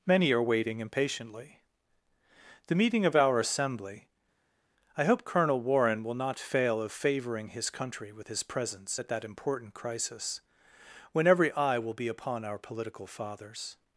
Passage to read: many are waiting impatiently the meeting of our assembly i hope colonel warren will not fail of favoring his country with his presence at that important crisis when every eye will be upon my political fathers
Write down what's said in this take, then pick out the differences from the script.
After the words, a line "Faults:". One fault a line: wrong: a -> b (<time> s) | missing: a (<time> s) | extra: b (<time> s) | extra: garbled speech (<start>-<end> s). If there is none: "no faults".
many are waiting impatiently the meeting of our assembly i hope colonel warren will not fail of favoring his country with his presence at that important crisis when every eye will be upon our political fathers
Faults:
wrong: my -> our (12.4 s)